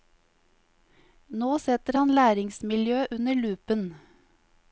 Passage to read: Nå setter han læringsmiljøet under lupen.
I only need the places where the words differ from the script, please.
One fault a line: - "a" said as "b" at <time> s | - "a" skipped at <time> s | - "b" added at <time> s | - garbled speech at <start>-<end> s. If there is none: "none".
none